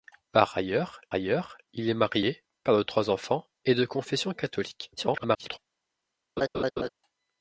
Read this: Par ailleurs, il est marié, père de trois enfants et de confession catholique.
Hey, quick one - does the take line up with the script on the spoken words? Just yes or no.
no